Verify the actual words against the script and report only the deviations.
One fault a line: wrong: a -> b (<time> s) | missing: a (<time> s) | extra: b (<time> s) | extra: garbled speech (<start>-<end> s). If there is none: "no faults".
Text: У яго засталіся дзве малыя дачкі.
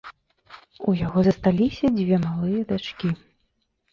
no faults